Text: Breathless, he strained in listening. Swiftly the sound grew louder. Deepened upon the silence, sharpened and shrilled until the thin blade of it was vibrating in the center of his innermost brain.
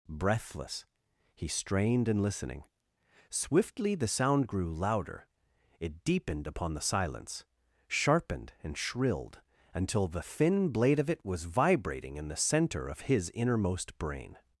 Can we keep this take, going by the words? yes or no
no